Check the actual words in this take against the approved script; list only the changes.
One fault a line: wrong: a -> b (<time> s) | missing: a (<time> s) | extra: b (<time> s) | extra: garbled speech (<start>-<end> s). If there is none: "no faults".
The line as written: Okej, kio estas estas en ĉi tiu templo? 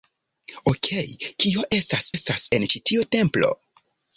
no faults